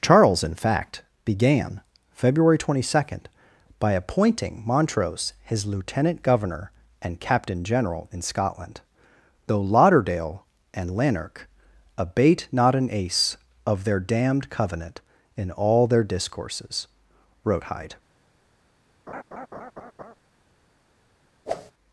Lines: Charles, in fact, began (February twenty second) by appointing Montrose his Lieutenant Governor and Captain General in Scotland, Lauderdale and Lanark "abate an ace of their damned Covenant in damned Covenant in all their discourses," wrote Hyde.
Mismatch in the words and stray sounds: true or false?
true